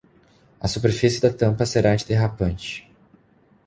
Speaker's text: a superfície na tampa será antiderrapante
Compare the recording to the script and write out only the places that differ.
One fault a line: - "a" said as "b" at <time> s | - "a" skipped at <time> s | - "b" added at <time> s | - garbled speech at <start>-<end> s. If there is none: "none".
- "na" said as "da" at 1.2 s